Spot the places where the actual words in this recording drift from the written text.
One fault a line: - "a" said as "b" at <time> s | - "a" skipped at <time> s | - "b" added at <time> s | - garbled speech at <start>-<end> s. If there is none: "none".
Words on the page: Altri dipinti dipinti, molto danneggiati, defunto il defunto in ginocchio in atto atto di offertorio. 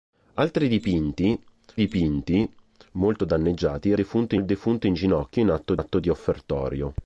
none